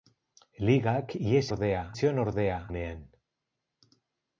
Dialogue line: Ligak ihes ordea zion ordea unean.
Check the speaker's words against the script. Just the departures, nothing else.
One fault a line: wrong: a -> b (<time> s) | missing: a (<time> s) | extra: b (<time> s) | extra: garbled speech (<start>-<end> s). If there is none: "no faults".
no faults